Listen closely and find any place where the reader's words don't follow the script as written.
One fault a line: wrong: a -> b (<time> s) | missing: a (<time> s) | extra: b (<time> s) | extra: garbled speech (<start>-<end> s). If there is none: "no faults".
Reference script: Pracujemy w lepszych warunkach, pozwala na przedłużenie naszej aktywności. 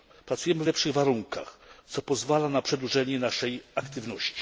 extra: co (1.9 s)